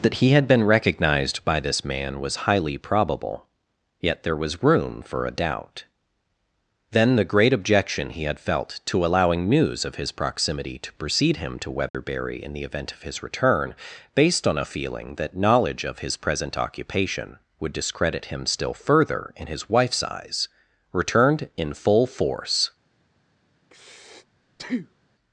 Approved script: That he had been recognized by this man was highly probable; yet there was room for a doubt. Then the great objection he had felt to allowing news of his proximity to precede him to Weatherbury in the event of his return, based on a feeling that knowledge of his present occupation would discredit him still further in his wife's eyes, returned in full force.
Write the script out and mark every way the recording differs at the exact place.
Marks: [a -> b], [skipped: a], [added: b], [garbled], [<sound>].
That he had been recognized by this man was highly probable; yet there was room for a doubt. Then the great objection he had felt to allowing news of his proximity to precede him to Weatherbury [dropout] in the event of his return, based on a feeling that knowledge of his present occupation would discredit him still further in his wife's eyes, returned in full force. [breath]